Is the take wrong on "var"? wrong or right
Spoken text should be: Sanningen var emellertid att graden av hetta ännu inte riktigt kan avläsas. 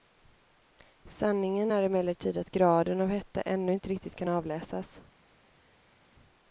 wrong